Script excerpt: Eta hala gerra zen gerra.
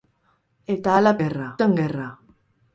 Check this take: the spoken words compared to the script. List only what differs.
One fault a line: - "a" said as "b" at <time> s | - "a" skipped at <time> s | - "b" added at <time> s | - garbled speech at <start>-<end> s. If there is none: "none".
none